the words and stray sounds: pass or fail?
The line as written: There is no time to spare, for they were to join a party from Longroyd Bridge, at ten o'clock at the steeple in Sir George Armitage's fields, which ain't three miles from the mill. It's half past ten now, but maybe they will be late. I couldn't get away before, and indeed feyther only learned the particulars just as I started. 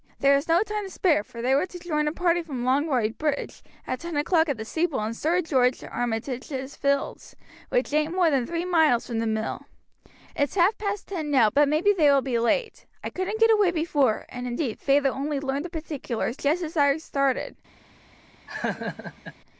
fail